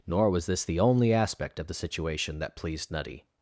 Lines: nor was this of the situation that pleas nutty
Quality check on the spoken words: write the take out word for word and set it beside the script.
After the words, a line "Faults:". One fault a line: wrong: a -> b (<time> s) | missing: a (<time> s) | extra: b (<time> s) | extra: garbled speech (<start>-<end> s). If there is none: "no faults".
nor was this the only aspect of the situation that pleased nutty
Faults:
extra: the only aspect (0.6 s)
wrong: pleas -> pleased (2.6 s)